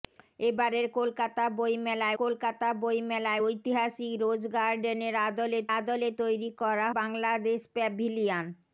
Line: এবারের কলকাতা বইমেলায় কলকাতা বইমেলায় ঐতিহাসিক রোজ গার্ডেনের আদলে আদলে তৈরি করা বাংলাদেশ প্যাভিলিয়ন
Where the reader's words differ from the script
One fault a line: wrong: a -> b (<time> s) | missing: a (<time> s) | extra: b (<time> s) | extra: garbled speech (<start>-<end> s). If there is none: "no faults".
no faults